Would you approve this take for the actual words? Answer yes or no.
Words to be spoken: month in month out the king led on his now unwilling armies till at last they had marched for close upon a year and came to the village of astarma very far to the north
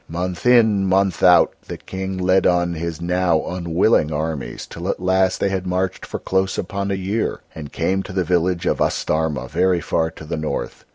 yes